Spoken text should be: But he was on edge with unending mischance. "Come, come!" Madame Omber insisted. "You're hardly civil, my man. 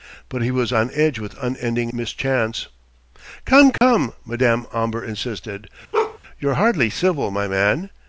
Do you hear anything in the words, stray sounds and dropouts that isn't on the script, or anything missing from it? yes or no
yes